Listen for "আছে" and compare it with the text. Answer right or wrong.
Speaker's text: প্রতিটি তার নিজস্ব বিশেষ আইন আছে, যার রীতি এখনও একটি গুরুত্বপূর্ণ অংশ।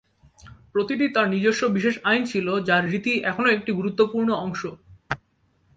wrong